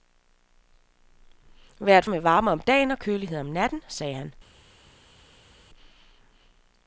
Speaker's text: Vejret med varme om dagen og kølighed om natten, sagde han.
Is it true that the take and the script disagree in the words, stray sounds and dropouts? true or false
false